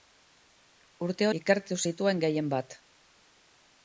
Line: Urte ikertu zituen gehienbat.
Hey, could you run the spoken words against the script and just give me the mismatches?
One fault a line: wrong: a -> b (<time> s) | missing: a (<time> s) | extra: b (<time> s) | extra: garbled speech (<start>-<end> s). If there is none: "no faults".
no faults